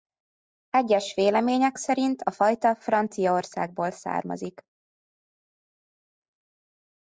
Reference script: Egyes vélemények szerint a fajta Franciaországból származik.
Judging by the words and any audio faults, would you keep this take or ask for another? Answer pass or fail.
pass